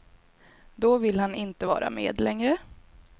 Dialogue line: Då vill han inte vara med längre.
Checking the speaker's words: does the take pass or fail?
pass